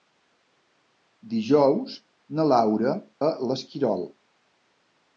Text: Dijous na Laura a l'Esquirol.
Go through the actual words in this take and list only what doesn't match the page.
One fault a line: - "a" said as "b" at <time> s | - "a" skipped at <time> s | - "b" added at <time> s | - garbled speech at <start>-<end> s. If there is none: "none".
none